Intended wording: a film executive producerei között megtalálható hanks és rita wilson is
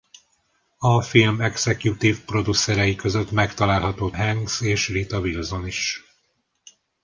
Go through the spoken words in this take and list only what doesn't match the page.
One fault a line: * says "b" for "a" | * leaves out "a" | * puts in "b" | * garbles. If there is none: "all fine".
all fine